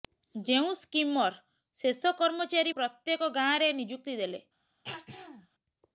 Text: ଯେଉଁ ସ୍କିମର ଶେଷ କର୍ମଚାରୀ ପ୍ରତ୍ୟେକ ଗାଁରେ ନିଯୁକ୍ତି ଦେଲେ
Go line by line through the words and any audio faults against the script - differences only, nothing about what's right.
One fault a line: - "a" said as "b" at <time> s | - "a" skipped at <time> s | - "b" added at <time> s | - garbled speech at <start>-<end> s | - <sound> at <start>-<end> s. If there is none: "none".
- throat clearing at 4.8-5.5 s